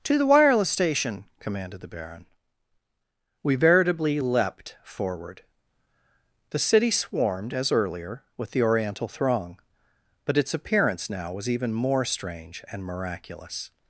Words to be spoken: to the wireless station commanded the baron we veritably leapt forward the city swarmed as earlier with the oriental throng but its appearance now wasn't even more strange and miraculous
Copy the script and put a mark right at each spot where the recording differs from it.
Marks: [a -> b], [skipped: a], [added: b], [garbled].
to the wireless station commanded the baron we veritably leapt forward the city swarmed as earlier with the oriental throng but its appearance now [wasn't -> was] even more strange and miraculous